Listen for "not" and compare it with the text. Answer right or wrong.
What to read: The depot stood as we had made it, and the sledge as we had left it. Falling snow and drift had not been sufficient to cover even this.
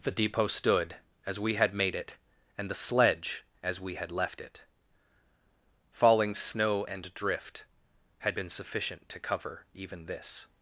wrong